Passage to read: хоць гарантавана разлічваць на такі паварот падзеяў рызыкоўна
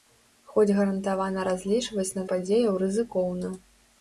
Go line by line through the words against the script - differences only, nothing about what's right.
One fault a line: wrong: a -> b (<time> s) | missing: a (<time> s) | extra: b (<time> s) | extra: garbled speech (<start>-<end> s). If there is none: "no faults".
missing: такі паварот (2.2 s)